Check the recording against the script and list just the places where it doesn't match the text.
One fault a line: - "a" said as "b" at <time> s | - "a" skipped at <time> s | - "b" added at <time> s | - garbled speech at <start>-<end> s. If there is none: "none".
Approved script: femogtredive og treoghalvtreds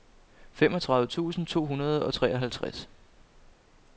- "tusind to hundrede" added at 1.1 s